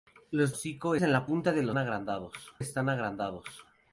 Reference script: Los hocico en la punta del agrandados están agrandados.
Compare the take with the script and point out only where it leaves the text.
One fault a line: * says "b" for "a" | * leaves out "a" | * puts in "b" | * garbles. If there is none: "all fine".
all fine